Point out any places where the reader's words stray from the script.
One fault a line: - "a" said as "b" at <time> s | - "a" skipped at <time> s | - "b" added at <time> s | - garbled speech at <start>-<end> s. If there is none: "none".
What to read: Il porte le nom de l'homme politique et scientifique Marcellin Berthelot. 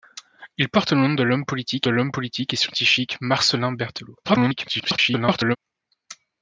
- "l'homme politique" added at 1.9 s
- garbled speech at 4.2-5.6 s